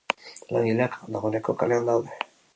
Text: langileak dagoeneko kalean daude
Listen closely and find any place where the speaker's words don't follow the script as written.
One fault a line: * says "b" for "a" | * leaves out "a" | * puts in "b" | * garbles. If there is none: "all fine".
all fine